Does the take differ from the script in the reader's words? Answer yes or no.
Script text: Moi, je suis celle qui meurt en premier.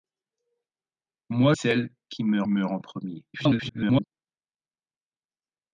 yes